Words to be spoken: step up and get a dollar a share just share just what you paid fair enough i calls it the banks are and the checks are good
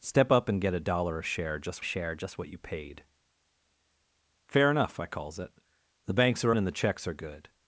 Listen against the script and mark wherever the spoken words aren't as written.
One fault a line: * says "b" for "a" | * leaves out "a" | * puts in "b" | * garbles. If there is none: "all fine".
all fine